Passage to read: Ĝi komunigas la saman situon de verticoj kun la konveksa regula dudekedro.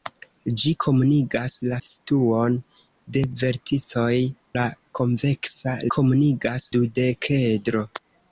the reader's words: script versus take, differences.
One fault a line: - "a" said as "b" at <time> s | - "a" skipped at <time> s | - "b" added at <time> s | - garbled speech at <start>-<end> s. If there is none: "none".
- "saman" skipped at 1.8 s
- "kun" skipped at 4.1 s
- "regula" said as "komunigas" at 5.9 s